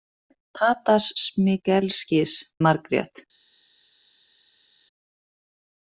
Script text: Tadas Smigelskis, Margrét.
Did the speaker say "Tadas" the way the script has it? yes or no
yes